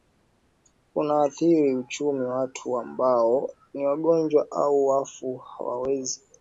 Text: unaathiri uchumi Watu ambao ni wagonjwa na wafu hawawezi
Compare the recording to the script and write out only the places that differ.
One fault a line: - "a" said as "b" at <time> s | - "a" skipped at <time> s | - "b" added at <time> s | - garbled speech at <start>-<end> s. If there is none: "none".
- "na" said as "au" at 4.5 s